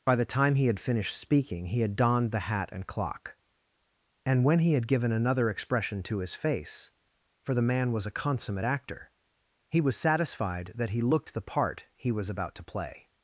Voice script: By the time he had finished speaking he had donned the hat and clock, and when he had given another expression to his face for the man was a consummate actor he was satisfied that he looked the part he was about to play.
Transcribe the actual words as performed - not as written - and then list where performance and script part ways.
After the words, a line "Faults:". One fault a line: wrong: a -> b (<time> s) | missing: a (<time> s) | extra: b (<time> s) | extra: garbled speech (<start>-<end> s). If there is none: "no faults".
By the time he had finished speaking he had donned the hat and clock, and when he had given another expression to his face for the man was a consummate actor he was satisfied that he looked the part he was about to play.
Faults:
no faults